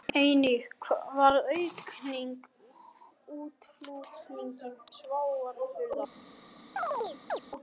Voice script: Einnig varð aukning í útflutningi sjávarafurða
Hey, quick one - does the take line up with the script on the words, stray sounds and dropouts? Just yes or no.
no